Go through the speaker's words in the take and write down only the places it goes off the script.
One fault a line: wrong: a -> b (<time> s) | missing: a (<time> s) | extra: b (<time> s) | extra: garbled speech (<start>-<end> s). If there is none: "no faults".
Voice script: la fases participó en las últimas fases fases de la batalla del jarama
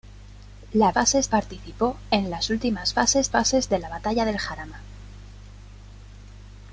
no faults